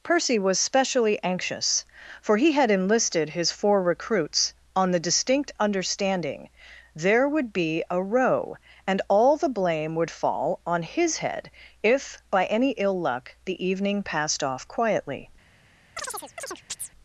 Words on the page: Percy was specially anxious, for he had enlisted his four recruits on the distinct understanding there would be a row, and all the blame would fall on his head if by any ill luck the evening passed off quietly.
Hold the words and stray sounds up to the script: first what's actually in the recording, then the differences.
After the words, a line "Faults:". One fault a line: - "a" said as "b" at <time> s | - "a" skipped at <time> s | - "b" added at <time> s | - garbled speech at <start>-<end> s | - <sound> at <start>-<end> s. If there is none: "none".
Percy was specially anxious, for he had enlisted his four recruits on the distinct understanding there would be a row, and all the blame would fall on his head if by any ill luck the evening passed off quietly.
Faults:
- chirp at 16.0-16.9 s